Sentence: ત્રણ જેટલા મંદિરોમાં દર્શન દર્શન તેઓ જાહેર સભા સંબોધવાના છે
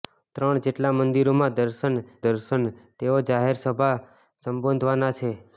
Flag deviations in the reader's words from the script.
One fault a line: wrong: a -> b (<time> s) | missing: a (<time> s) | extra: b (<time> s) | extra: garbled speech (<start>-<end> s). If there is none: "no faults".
no faults